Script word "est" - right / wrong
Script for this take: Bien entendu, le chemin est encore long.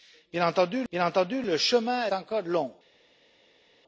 wrong